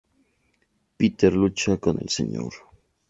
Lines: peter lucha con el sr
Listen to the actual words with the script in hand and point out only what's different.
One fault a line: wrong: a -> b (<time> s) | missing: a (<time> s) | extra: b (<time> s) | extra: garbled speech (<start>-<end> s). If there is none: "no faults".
no faults